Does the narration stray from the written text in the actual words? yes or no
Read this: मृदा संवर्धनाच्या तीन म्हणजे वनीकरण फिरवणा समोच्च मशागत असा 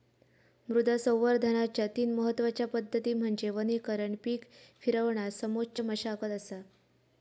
yes